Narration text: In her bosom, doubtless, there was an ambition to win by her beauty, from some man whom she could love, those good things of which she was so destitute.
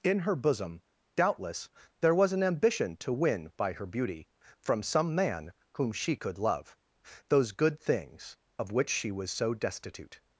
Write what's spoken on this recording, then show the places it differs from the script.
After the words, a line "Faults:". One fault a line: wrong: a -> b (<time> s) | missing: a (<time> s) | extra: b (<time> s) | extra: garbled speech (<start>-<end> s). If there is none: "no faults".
In her bosom, doubtless, there was an ambition to win by her beauty, from some man whom she could love, those good things of which she was so destitute.
Faults:
no faults